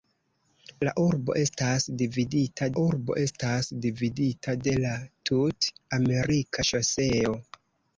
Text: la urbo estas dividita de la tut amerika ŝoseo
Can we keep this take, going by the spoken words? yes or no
no